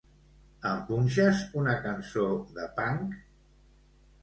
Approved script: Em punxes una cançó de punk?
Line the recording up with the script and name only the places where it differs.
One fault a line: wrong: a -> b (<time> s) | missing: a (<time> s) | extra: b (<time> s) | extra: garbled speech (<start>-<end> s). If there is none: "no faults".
no faults